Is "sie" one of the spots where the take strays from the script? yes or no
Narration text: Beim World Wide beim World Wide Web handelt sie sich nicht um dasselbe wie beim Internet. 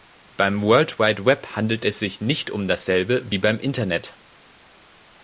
yes